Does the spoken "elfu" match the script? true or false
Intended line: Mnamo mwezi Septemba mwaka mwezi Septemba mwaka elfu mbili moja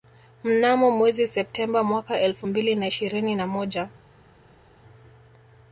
false